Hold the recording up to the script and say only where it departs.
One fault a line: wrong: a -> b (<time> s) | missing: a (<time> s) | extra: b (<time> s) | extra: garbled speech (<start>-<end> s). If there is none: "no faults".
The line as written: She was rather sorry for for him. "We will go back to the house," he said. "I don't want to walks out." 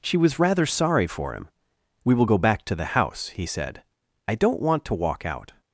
missing: for (1.3 s)
wrong: walks -> walk (4.9 s)